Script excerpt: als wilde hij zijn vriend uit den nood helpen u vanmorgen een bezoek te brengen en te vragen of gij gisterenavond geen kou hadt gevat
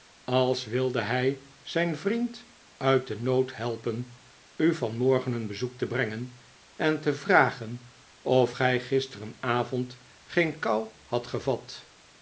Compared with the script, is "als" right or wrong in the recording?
right